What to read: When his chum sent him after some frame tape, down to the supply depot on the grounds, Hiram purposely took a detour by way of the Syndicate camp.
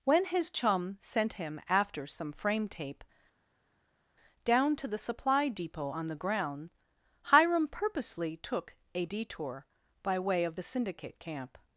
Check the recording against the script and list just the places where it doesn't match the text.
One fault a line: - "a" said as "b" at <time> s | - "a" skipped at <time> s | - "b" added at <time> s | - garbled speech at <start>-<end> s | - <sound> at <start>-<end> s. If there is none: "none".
- "grounds" said as "ground" at 6.2 s